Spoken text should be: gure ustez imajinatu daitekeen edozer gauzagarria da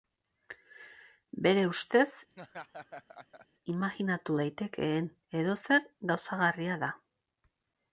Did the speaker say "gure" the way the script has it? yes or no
no